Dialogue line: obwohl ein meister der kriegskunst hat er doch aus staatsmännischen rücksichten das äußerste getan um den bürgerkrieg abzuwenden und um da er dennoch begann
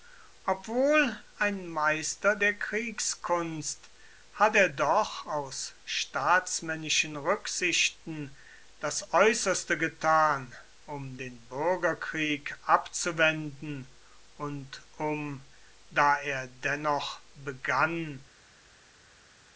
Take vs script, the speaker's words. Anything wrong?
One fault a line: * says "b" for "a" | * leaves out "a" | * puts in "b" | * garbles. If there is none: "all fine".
all fine